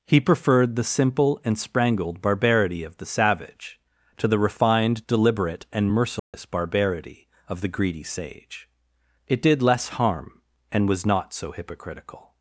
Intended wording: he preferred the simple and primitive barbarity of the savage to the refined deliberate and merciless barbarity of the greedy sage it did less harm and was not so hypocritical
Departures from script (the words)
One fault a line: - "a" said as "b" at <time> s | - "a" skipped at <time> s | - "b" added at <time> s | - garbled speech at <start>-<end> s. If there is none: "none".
- "primitive" said as "sprangled" at 1.6 s